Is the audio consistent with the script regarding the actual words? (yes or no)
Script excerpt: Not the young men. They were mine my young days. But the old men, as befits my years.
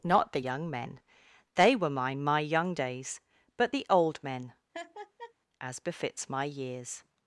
yes